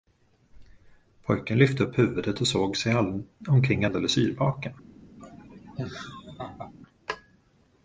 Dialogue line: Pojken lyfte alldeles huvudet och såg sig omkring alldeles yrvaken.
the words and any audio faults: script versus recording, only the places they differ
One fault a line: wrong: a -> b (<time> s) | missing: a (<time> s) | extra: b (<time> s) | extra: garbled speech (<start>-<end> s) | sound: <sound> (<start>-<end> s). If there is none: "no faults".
wrong: alldeles -> upp (1.8 s)
sound: laugh (5.2-6.7 s)